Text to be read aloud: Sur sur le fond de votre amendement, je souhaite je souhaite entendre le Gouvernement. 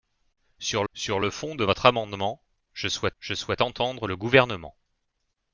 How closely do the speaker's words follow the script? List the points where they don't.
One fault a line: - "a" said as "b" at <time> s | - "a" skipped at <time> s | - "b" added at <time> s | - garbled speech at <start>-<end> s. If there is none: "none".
none